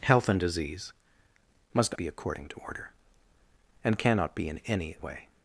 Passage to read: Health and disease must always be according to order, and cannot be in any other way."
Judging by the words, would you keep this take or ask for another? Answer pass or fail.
fail